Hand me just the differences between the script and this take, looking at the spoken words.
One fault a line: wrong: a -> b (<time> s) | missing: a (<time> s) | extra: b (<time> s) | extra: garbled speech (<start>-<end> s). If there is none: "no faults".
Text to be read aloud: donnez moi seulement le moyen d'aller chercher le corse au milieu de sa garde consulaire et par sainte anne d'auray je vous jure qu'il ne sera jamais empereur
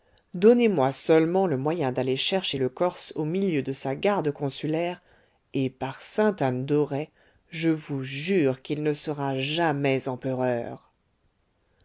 no faults